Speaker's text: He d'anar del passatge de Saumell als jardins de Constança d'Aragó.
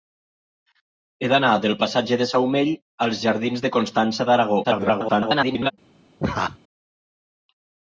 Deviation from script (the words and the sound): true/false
true